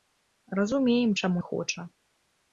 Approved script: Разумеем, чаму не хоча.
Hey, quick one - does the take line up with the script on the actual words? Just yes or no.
no